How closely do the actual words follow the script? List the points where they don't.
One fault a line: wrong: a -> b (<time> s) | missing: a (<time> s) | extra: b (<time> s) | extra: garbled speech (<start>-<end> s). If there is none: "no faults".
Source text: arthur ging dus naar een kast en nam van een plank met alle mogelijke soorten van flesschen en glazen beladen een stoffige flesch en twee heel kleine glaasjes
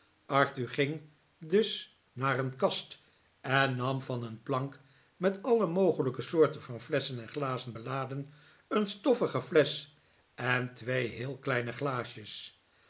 no faults